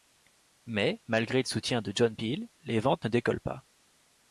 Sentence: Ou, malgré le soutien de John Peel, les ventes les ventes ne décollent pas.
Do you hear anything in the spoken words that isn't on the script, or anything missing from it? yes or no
yes